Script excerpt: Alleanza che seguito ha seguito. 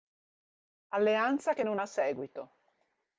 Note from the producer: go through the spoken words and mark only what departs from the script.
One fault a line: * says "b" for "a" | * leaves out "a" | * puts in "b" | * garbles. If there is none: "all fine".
* says "non" for "seguito"